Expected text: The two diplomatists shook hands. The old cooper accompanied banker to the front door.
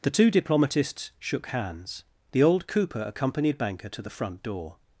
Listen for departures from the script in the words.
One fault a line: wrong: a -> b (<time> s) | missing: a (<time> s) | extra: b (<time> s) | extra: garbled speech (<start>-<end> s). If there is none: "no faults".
no faults